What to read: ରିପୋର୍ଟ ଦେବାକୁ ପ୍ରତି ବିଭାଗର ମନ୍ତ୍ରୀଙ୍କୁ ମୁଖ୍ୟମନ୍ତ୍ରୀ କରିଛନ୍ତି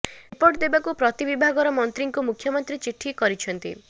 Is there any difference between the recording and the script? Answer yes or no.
yes